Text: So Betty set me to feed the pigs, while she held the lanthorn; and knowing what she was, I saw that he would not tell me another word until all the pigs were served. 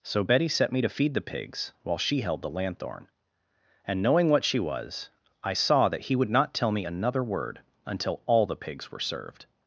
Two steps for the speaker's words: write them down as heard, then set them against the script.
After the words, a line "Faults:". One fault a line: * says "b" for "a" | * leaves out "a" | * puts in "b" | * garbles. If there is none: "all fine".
So Betty set me to feed the pigs, while she held the lanthorn; and knowing what she was, I saw that he would not tell me another word until all the pigs were served.
Faults:
all fine